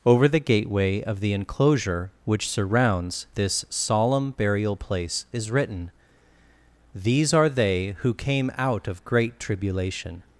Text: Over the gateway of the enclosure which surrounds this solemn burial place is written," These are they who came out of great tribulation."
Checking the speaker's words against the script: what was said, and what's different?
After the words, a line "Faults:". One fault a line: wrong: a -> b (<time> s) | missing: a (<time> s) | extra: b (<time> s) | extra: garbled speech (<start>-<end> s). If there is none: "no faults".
Over the gateway of the enclosure which surrounds this solemn burial place is written," These are they who came out of great tribulation."
Faults:
no faults